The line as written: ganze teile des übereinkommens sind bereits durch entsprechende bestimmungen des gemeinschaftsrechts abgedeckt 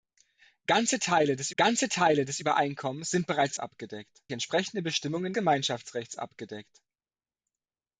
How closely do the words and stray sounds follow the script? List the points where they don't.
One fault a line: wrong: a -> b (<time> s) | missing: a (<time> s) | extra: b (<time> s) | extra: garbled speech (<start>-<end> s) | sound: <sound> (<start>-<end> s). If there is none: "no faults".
extra: ganze teile des (1.5 s)
wrong: durch -> abgedeckt (3.6 s)
missing: des (5.3 s)